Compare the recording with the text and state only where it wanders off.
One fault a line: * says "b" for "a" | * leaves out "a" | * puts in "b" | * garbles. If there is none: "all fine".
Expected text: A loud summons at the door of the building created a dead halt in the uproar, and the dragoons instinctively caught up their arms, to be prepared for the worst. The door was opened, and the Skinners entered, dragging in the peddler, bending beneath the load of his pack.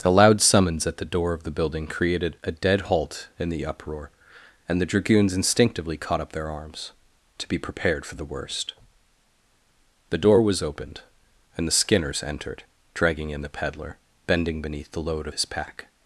* says "The" for "A"